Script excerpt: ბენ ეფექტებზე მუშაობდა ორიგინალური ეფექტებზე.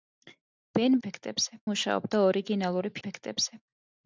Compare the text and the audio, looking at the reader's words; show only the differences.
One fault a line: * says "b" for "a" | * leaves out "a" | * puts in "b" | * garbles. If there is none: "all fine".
all fine